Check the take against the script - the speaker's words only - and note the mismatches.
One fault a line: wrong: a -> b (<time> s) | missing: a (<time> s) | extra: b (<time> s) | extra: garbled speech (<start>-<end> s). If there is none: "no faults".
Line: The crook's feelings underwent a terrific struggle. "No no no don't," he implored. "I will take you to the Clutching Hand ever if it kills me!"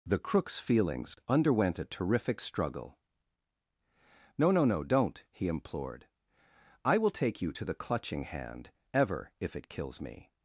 no faults